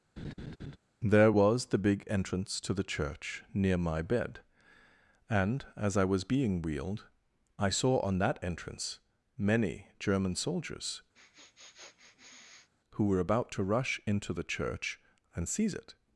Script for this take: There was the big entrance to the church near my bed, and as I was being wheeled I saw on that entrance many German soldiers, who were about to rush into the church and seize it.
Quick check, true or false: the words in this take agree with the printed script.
true